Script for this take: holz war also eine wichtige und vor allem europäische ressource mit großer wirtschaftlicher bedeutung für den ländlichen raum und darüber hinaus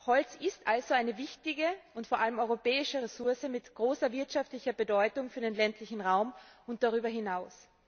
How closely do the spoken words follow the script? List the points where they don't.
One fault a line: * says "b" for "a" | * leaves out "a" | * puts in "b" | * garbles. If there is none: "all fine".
* says "ist" for "war"